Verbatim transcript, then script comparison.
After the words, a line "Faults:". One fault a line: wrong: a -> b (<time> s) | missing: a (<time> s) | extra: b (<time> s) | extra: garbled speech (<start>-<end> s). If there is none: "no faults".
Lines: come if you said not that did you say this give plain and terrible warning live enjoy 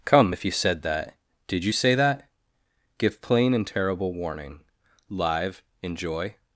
come if you said that did you say that give plain and terrible warning live enjoy
Faults:
missing: not (0.8 s)
wrong: this -> that (1.9 s)